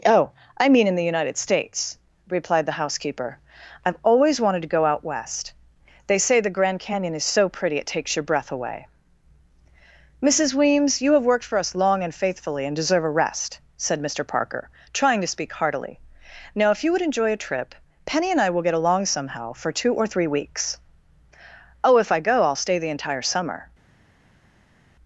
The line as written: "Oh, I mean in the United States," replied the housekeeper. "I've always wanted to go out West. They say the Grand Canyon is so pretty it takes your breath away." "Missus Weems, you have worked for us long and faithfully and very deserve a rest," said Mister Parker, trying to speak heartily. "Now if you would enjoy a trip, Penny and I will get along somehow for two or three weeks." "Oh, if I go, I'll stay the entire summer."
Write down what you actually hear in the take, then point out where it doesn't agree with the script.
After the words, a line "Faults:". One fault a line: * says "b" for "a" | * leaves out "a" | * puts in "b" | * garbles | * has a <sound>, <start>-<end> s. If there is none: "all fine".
"Oh, I mean in the United States," replied the housekeeper. "I've always wanted to go out West. They say the Grand Canyon is so pretty it takes your breath away." "Missus Weems, you have worked for us long and faithfully and deserve a rest," said Mister Parker, trying to speak heartily. "Now if you would enjoy a trip, Penny and I will get along somehow for two or three weeks." "Oh, if I go, I'll stay the entire summer."
Faults:
* leaves out "very"